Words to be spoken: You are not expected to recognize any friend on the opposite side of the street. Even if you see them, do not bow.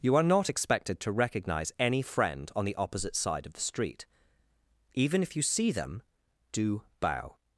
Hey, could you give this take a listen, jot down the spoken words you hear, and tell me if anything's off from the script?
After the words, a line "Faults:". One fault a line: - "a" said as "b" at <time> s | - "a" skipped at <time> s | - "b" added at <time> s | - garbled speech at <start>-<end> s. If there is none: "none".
You are not expected to recognize any friend on the opposite side of the street. Even if you see them, do bow.
Faults:
- "not" skipped at 6.8 s